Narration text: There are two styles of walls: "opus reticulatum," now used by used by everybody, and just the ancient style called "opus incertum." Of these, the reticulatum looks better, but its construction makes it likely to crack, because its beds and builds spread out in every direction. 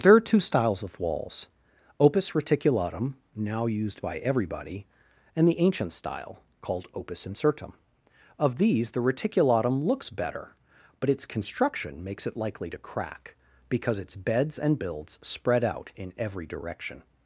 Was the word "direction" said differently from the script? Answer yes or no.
no